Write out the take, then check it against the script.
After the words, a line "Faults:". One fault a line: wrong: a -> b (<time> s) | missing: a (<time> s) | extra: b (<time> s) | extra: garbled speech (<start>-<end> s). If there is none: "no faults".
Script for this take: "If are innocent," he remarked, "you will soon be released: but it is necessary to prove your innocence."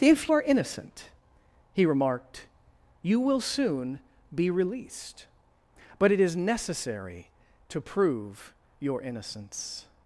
"If are innocent," he remarked, "you will soon be released: but it is necessary to prove your innocence."
Faults:
no faults